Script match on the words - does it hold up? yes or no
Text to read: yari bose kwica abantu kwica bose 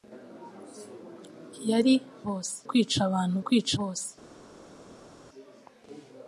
yes